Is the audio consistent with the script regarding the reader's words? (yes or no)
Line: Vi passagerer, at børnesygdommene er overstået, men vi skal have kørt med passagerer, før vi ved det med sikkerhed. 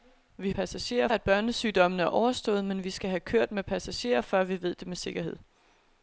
yes